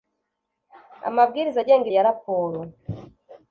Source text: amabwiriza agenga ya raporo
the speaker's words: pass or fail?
pass